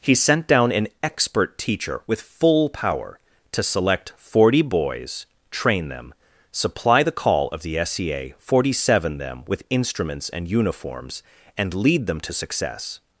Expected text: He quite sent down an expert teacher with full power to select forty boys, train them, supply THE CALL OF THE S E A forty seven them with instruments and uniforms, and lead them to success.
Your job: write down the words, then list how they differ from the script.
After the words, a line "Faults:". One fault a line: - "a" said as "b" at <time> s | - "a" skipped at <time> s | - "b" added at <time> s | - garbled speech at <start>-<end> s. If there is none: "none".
He sent down an expert teacher with full power to select forty boys, train them, supply THE CALL OF THE S E A forty seven them with instruments and uniforms, and lead them to success.
Faults:
- "quite" skipped at 0.1 s